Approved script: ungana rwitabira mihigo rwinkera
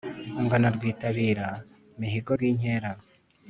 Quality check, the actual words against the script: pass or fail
pass